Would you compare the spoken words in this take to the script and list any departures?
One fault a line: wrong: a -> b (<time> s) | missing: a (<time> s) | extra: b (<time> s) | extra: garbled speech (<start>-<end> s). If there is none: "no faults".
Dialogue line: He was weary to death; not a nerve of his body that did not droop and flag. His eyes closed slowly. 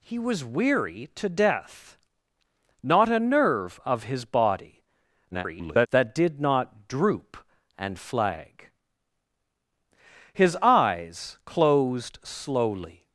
extra: garbled speech (5.3-5.9 s)